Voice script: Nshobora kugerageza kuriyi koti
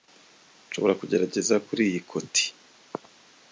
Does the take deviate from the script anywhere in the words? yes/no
no